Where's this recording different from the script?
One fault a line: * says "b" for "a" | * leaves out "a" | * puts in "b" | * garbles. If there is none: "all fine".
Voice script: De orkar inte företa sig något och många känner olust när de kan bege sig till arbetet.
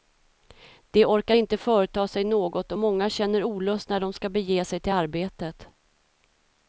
* says "ska" for "kan"